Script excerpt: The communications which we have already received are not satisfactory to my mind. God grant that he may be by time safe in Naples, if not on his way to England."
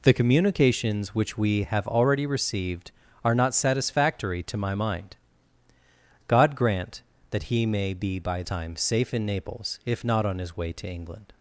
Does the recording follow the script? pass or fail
pass